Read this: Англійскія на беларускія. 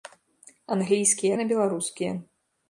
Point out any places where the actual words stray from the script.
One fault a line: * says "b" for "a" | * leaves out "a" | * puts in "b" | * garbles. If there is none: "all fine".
all fine